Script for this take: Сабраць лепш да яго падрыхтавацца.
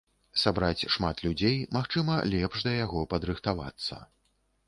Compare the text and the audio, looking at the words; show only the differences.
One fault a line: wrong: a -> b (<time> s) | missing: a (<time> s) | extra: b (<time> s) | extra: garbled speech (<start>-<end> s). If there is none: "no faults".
extra: шмат людзей магчыма (0.9 s)